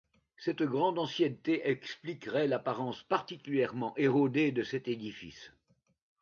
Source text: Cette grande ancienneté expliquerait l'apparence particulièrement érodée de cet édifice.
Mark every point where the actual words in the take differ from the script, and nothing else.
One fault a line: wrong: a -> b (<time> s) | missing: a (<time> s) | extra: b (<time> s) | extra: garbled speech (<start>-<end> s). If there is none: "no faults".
no faults